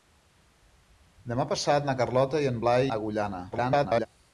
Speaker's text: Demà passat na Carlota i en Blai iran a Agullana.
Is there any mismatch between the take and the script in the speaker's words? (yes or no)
yes